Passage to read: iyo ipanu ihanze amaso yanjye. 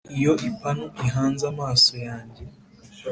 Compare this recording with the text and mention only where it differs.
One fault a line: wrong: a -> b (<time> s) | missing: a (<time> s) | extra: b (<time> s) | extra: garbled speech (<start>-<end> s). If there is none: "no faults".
no faults